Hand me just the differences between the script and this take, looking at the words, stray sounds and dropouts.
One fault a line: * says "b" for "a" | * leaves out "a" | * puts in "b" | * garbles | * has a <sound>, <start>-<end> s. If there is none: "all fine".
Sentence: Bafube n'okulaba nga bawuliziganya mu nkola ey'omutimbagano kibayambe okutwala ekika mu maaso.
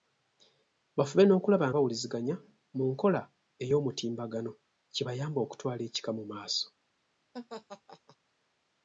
* leaves out "nga"
* has a laugh, 7.3-8.2 s